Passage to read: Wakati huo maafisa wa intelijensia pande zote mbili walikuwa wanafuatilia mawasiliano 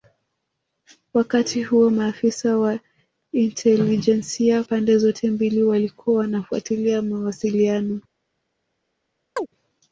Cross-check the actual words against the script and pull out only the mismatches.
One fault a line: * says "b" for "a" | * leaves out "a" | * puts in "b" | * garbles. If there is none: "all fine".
all fine